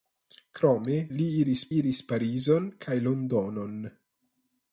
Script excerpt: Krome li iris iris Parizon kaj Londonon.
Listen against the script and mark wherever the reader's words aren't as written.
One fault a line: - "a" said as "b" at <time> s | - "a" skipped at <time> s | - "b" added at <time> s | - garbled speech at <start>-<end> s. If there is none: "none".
none